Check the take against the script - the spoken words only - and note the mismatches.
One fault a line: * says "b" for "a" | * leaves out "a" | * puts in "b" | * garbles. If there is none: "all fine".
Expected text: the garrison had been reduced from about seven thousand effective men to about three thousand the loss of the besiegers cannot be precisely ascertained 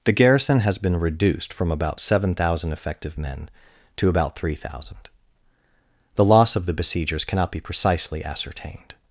* says "has" for "had"